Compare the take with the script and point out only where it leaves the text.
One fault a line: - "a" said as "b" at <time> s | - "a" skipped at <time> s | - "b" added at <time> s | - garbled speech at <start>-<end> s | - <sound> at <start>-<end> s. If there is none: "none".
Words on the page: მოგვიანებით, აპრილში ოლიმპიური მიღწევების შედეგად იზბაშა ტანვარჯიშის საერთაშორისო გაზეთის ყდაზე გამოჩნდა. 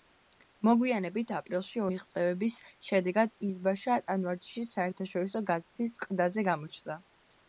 - "ოლიმპიური" skipped at 1.8 s
- dropout at 5.6-5.8 s